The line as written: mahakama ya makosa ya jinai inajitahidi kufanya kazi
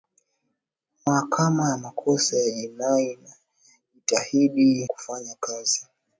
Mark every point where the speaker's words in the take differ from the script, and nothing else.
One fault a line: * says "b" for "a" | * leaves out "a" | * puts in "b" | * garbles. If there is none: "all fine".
all fine